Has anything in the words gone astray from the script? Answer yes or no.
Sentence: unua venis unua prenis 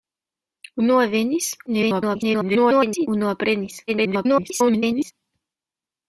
yes